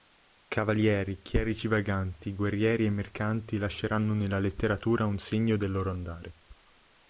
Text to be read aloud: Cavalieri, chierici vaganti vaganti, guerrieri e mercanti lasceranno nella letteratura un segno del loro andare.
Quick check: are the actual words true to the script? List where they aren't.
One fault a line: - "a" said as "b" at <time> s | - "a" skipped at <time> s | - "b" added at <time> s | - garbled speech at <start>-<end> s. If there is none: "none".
- "vaganti" skipped at 2.3 s